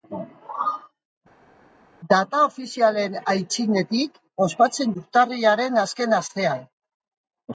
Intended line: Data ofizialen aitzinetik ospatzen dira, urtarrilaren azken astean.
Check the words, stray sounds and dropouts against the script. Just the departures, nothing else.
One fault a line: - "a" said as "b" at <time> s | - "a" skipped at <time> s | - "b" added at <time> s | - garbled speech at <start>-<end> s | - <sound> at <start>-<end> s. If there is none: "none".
- "dira" skipped at 4.9 s